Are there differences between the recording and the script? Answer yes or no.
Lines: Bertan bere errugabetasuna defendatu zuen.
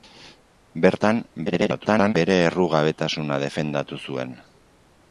yes